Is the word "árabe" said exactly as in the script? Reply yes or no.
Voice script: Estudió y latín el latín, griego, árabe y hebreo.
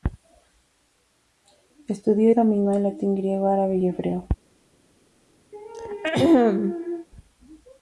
yes